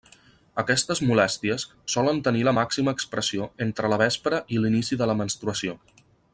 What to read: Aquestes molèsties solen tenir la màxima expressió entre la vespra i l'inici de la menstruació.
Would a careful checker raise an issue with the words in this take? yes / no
no